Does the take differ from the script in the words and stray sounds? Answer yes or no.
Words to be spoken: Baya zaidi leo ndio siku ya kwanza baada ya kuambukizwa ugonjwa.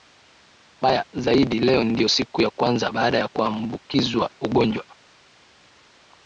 no